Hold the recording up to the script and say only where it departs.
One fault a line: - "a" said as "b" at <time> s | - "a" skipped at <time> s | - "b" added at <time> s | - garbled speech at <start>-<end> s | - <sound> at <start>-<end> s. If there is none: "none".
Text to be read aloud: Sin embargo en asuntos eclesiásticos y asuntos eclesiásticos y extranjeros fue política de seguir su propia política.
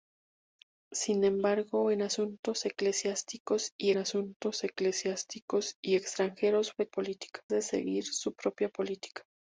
none